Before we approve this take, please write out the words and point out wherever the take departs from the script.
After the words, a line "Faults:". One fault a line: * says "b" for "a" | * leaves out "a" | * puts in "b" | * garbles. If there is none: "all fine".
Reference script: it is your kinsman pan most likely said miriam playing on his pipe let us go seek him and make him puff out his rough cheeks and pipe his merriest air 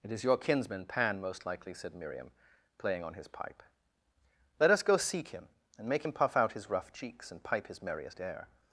it is your kinsman pan most likely said miriam playing on his pipe let us go seek him and make him puff out his rough cheeks and pipe his merriest air
Faults:
all fine